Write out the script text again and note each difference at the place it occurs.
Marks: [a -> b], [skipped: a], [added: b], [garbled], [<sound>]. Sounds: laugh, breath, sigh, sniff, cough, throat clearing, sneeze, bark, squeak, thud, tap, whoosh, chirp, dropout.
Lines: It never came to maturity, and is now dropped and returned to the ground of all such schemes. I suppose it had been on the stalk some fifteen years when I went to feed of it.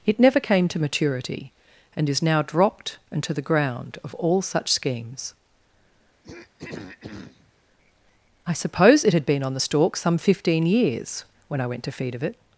It never came to maturity, and is now dropped and [skipped: returned] to the ground of all such schemes. [throat clearing] I suppose it had been on the stalk some fifteen years when I went to feed of it.